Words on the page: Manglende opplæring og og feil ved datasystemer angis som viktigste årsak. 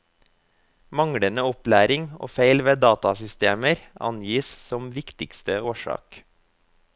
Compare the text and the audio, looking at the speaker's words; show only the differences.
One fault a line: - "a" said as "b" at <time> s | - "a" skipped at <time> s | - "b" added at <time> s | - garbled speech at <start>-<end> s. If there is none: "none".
- "og" skipped at 2.3 s